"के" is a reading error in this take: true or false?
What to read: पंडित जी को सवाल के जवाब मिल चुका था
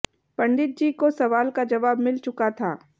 true